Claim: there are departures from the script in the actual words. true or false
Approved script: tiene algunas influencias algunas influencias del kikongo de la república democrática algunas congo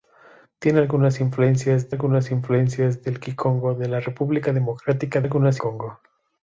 false